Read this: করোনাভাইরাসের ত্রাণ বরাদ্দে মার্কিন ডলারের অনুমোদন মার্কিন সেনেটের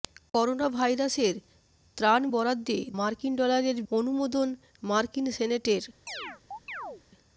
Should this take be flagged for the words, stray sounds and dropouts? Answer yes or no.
yes